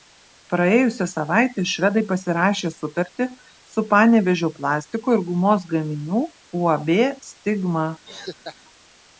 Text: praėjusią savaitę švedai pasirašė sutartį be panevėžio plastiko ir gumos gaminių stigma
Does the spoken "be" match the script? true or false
false